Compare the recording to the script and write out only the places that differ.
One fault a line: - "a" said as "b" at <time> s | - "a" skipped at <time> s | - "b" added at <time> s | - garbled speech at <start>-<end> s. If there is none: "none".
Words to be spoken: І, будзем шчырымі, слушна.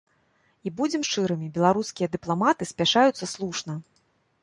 - "беларускія дыпламаты спяшаюцца" added at 1.6 s